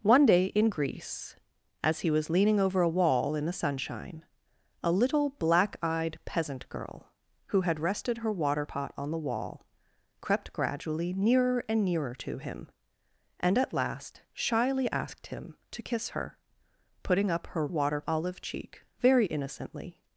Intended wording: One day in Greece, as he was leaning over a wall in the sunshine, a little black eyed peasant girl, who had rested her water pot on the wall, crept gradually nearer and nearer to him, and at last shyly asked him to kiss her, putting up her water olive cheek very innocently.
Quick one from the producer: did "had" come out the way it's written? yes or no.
yes